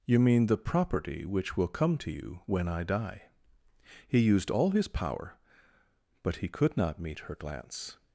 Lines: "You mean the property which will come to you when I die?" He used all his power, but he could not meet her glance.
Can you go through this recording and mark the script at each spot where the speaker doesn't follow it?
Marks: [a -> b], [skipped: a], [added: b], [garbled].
"You mean the property which will come to you when I die?" He used all his power, but he could not meet her glance.